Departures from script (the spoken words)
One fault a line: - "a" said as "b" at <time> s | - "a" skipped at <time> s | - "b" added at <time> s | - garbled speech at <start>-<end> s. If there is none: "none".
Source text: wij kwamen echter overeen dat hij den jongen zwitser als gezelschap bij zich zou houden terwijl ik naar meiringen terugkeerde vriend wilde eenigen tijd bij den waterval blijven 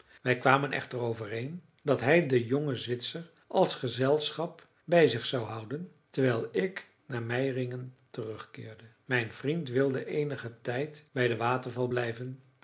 - "mijn" added at 9.0 s